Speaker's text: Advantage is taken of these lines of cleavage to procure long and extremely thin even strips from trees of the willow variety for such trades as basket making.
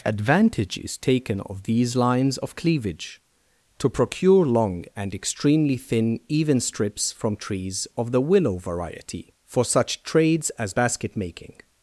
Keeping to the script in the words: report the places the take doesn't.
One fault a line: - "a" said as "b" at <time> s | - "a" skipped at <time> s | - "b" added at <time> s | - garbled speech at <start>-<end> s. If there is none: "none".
none